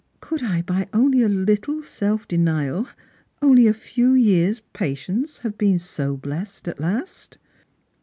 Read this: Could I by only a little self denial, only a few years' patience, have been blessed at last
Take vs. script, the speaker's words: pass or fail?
fail